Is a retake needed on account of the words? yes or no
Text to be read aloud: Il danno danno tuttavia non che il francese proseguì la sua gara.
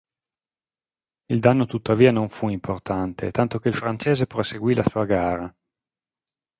yes